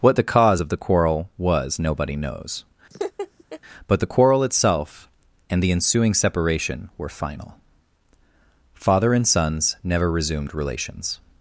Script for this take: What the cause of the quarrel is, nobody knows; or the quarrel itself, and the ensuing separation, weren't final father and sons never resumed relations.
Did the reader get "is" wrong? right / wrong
wrong